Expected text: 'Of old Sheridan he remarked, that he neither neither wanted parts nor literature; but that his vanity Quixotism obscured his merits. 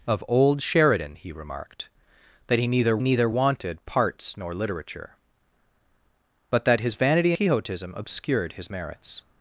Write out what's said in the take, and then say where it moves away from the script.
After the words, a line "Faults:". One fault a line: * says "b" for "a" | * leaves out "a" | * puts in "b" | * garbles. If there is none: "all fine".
'Of old Sheridan he remarked, that he neither neither wanted parts nor literature; but that his vanity Quixotism obscured his merits.
Faults:
all fine